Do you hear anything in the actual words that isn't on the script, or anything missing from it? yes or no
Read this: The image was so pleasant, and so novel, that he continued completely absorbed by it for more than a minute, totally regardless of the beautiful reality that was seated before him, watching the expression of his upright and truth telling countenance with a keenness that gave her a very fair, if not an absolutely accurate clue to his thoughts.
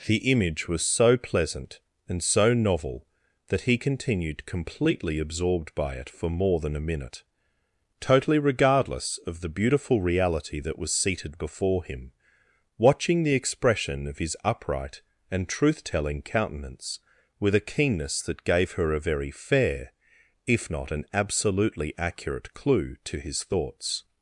no